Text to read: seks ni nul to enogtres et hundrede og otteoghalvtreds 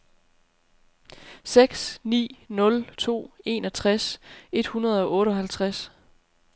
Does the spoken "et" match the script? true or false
true